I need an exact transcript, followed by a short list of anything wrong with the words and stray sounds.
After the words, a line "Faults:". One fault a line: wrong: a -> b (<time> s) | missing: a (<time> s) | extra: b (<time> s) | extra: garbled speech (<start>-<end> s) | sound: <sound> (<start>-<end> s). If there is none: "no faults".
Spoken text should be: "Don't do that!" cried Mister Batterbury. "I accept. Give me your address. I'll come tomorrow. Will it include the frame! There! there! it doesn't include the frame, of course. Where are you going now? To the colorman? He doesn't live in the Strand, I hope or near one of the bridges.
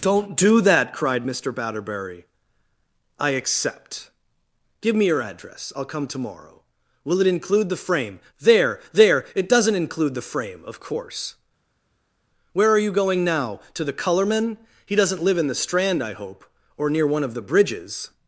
"Don't do that!" cried Mister Batterbury. "I accept. Give me your address. I'll come tomorrow. Will it include the frame! There! there! it doesn't include the frame, of course. Where are you going now? To the colorman? He doesn't live in the Strand, I hope or near one of the bridges.
Faults:
no faults